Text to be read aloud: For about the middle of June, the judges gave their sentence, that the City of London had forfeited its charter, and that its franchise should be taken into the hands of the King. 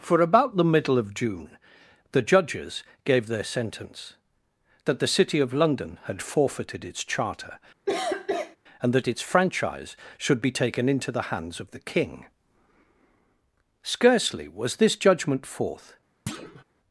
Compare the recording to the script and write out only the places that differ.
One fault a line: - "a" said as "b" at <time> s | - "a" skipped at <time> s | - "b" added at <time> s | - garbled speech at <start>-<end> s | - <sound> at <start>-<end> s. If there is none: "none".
- cough at 7.9-8.6 s
- "Scarcely was this judgment forth" added at 13.8 s
- thud at 16.3-16.6 s